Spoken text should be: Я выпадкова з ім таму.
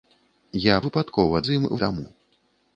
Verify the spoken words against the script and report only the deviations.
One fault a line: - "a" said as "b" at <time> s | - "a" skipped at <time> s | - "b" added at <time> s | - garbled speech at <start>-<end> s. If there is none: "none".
none